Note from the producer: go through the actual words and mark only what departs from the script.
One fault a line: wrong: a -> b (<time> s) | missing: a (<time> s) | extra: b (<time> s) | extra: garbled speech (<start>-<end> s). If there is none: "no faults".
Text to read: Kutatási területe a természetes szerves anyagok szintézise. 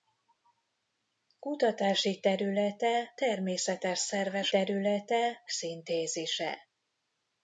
missing: a (3.1 s)
wrong: anyagok -> területe (4.5 s)